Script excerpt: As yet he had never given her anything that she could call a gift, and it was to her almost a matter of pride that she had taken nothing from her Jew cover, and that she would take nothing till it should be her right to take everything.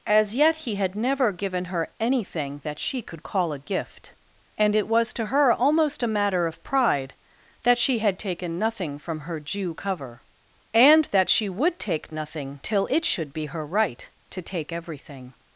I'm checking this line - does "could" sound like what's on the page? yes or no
yes